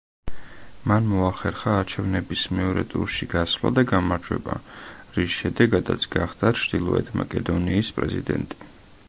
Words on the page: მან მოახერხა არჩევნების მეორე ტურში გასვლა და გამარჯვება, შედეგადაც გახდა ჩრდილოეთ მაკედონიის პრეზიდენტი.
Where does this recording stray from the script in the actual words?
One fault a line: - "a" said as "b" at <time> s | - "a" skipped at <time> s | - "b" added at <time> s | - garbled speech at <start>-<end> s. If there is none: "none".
- "რის" added at 5.2 s